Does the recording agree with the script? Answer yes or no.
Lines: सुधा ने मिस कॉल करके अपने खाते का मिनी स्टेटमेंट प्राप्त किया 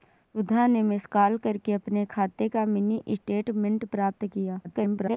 no